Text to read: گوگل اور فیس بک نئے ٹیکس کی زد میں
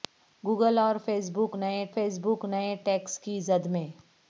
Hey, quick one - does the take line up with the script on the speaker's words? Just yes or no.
no